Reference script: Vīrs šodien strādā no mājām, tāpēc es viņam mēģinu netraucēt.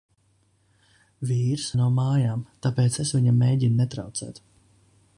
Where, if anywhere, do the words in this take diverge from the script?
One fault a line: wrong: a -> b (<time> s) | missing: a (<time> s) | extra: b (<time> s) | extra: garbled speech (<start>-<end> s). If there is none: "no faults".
missing: šodien strādā (1.6 s)